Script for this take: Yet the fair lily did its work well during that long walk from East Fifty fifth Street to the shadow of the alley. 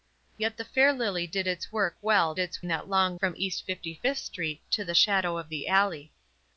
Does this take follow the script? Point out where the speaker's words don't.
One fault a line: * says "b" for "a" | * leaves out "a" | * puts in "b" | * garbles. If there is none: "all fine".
* says "its" for "during"
* leaves out "walk"